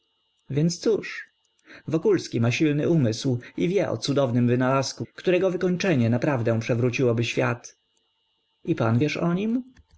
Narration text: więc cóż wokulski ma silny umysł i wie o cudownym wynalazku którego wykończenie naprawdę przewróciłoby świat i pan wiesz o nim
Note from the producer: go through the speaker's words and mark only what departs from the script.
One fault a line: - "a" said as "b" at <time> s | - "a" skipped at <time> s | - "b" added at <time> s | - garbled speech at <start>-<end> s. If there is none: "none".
none